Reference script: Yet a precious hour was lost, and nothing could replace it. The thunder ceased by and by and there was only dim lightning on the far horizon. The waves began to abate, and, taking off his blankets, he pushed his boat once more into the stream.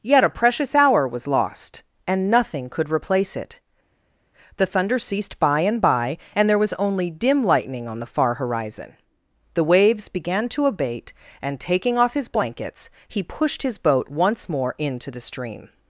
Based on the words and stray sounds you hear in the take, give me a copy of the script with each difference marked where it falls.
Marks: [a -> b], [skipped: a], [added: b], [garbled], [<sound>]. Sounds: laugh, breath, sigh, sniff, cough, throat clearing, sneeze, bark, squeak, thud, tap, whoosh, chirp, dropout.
Yet a precious hour was lost, and nothing could replace it. The thunder ceased by and by and there was only dim lightning on the far horizon. The waves began to abate, and, taking off his blankets, he pushed his boat once more into the stream.